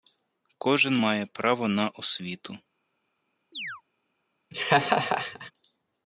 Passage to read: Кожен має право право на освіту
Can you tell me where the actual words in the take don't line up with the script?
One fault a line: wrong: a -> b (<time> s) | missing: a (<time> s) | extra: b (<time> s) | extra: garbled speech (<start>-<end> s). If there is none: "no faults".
missing: право (1.7 s)